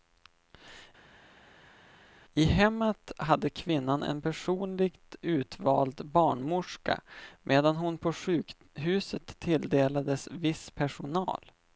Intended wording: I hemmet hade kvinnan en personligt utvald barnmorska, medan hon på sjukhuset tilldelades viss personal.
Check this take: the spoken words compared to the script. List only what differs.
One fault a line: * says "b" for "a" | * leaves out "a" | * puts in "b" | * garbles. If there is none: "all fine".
all fine